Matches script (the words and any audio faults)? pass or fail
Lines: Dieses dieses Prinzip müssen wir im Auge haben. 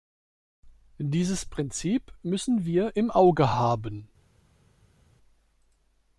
fail